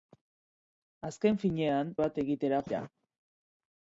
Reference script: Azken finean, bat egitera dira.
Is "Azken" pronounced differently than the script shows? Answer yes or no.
no